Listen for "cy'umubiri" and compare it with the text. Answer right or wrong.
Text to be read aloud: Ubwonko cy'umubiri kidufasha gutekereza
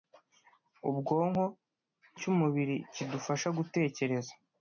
right